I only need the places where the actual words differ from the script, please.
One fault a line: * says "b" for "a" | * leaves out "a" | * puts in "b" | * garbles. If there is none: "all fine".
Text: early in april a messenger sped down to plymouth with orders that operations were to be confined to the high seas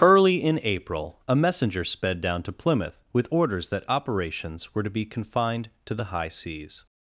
all fine